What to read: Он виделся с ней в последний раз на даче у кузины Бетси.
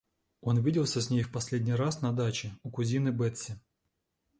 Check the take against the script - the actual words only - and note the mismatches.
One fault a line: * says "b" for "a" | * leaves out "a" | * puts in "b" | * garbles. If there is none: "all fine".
all fine